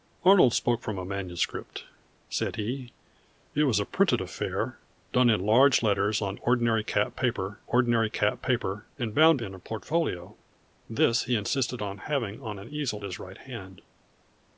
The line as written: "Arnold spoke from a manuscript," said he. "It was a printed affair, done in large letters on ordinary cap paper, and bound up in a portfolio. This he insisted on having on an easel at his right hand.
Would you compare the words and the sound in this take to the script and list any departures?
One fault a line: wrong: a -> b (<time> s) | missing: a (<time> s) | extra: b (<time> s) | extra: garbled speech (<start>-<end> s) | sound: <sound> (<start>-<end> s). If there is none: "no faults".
extra: ordinary cap paper (7.6 s)
missing: up (9.4 s)
missing: at (13.0 s)